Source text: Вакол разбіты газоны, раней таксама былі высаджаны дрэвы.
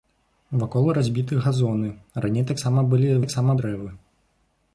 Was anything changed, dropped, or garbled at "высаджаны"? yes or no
yes